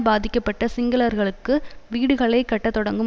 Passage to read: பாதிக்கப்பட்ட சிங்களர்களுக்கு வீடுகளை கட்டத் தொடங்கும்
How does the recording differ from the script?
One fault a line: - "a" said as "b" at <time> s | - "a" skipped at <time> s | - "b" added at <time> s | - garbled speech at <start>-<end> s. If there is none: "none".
none